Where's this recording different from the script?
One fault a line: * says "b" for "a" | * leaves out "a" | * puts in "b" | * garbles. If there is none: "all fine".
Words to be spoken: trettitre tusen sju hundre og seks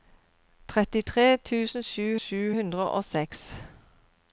* puts in "sju"